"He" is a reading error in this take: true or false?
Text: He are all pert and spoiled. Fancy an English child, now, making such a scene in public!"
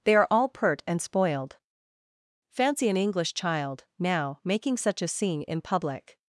true